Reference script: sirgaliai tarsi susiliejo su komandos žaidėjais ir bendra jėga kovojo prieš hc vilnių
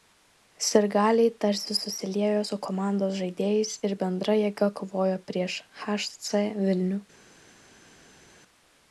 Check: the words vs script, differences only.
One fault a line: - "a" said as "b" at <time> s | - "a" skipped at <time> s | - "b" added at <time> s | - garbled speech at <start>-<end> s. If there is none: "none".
none